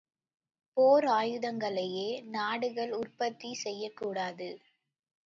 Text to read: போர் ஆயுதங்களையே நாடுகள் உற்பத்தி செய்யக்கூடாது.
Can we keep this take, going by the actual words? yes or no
yes